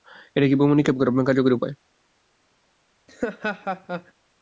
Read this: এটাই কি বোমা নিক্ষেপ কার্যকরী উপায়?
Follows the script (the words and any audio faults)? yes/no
no